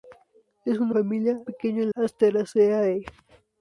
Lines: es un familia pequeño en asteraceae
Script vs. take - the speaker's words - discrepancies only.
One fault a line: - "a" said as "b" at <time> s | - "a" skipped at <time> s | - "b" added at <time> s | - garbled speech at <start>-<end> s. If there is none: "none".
none